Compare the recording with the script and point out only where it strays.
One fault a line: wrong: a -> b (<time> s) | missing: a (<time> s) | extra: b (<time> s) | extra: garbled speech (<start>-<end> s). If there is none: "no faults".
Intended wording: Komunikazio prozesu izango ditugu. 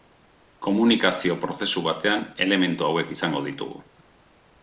extra: batean elementu hauek (1.9 s)